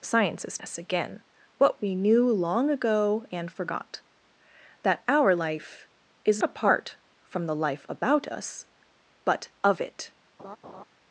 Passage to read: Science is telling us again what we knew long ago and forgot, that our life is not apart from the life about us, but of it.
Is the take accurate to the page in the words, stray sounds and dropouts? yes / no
no